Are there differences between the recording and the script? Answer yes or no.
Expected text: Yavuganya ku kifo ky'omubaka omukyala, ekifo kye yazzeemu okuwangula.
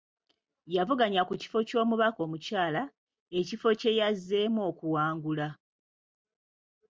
no